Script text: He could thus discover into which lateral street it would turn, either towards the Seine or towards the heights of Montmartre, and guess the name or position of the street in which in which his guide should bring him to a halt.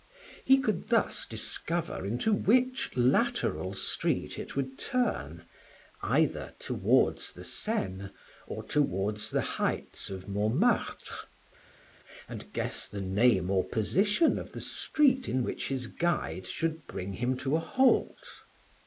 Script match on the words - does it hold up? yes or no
no